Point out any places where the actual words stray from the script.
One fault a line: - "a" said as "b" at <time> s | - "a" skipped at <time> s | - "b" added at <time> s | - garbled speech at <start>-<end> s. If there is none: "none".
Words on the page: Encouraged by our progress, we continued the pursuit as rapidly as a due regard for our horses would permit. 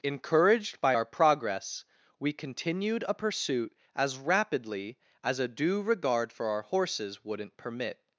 - "the" said as "a" at 3.1 s
- "would" said as "wouldn't" at 7.2 s